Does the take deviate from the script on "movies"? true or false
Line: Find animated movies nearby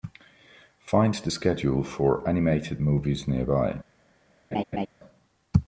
false